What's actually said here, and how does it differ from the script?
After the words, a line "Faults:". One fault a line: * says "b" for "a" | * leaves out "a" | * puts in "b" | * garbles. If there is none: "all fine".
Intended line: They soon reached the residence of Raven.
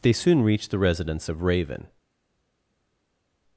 They soon reached the residence of Raven.
Faults:
all fine